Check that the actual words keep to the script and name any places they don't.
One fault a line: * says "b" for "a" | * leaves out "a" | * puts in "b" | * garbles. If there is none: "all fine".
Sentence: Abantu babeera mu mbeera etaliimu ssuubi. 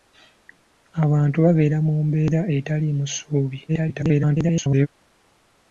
* garbles